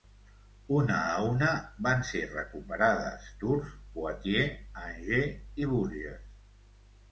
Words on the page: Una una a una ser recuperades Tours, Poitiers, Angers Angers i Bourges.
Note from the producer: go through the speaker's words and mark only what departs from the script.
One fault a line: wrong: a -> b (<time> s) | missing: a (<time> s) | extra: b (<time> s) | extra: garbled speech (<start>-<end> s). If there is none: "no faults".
missing: una (0.9 s)
extra: van (1.9 s)
missing: Angers (5.6 s)